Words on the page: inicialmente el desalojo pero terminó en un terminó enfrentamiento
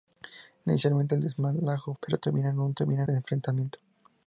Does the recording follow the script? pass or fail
pass